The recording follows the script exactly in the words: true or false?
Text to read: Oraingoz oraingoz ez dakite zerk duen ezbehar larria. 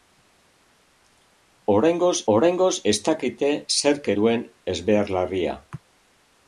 true